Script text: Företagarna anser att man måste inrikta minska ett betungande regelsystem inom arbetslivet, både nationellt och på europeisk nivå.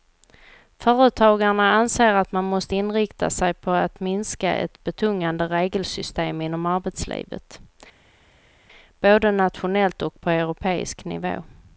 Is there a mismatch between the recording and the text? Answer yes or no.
yes